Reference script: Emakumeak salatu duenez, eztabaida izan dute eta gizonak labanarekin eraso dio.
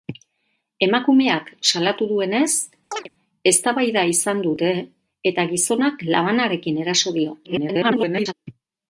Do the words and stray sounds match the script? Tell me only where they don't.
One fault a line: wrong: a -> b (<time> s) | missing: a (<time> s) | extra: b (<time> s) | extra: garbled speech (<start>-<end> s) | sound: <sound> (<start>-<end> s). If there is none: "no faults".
sound: chirp (2.9-3.1 s)
extra: garbled speech (7.4-8.3 s)